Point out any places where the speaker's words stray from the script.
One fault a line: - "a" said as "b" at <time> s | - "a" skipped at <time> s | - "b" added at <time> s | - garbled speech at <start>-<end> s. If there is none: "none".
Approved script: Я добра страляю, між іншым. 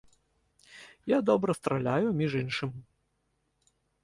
none